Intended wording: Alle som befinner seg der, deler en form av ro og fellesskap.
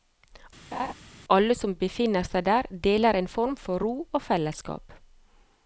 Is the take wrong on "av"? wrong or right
wrong